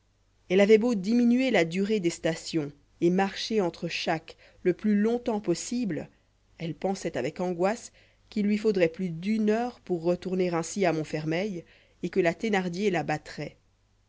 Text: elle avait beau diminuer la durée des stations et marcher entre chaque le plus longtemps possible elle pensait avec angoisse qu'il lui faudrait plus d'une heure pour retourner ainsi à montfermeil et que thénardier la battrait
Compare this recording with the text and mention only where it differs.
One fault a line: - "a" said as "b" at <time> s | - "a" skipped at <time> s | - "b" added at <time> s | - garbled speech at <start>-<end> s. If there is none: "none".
- "la" added at 12.2 s